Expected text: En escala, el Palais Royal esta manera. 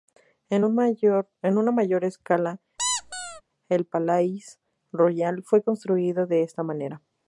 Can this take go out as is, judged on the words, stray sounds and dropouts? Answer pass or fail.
fail